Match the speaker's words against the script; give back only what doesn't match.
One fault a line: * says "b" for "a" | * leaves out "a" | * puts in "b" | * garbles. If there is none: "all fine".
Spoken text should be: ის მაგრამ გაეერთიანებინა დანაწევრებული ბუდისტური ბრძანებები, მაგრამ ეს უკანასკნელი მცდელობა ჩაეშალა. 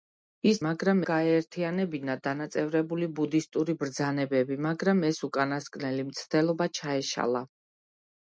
all fine